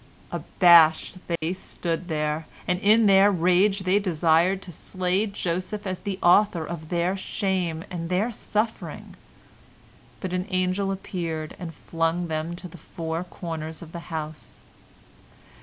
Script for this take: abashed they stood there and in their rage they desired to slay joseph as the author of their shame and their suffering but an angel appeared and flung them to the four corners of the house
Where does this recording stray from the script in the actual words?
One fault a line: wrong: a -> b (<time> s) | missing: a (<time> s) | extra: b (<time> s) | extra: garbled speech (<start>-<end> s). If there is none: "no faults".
no faults